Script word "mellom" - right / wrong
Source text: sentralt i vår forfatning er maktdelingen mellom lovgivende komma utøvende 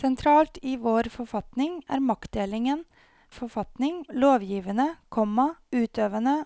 wrong